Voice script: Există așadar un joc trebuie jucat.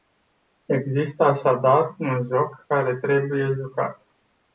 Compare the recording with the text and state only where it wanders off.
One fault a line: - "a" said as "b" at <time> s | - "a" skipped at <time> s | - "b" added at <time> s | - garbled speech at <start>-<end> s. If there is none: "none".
- "care" added at 2.7 s